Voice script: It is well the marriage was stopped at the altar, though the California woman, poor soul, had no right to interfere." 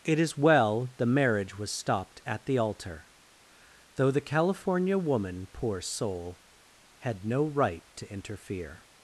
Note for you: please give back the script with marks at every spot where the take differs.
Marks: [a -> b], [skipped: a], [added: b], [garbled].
It is well the marriage was stopped at the altar, though the California woman, poor soul, had no right to interfere."